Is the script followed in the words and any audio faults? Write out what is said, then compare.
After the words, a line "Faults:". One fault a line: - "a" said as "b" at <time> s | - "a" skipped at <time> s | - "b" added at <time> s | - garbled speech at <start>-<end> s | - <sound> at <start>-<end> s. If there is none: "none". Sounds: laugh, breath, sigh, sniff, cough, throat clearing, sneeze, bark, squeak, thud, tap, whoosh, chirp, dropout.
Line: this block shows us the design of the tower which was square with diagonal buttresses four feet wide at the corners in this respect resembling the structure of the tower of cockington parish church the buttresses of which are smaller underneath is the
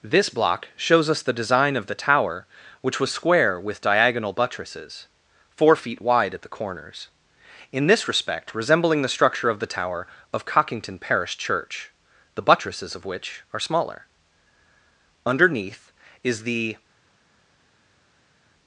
this block shows us the design of the tower which was square with diagonal buttresses four feet wide at the corners in this respect resembling the structure of the tower of cockington parish church the buttresses of which are smaller underneath is the
Faults:
none